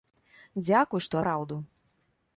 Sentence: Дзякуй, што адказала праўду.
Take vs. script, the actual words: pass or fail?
fail